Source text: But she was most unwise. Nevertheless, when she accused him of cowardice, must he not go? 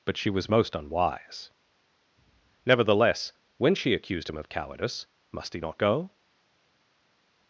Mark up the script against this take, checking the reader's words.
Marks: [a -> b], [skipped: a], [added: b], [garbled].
But she was most unwise. Nevertheless, when she accused him of cowardice, must he not go?